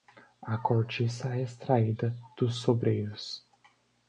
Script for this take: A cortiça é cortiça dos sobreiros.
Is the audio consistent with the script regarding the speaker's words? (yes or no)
no